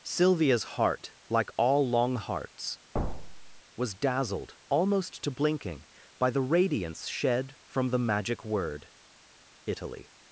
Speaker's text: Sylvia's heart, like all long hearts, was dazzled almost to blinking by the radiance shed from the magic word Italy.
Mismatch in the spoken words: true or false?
false